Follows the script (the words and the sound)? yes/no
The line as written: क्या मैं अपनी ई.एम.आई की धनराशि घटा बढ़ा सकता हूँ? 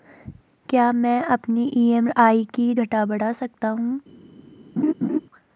no